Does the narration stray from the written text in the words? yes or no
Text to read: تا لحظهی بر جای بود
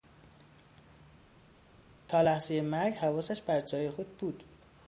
yes